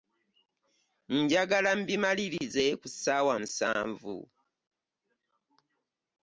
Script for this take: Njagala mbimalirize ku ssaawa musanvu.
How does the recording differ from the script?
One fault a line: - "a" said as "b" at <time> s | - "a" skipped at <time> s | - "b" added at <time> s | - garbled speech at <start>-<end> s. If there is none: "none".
none